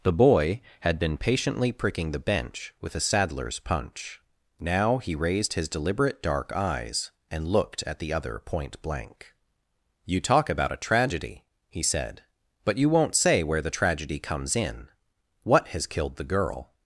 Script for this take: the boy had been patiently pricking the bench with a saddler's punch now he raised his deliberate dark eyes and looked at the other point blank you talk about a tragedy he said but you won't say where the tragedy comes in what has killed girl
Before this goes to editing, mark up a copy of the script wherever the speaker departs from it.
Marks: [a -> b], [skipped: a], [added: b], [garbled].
the boy had been patiently pricking the bench with a saddler's punch now he raised his deliberate dark eyes and looked at the other point blank you talk about a tragedy he said but you won't say where the tragedy comes in what has killed [added: the] girl